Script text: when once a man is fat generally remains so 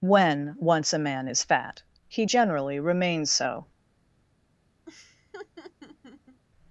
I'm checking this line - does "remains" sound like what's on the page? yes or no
yes